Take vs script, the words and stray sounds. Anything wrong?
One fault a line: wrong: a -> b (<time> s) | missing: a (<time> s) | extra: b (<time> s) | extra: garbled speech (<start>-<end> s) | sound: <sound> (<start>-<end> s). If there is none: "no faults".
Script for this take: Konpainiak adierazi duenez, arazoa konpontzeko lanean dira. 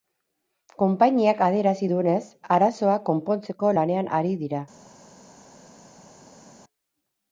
extra: ari (4.2 s)